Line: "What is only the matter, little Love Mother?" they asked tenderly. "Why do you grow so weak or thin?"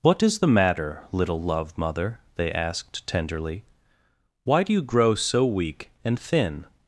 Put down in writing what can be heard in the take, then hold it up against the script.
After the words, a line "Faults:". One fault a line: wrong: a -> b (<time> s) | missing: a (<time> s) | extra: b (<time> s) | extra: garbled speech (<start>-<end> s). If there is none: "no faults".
"What is the matter, little Love Mother?" they asked tenderly. "Why do you grow so weak and thin?"
Faults:
missing: only (0.4 s)
wrong: or -> and (6.0 s)